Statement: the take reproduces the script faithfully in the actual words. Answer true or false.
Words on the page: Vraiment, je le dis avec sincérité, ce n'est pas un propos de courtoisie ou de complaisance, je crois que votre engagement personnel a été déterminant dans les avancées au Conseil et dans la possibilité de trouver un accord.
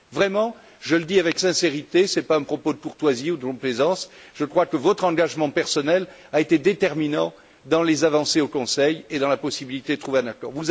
true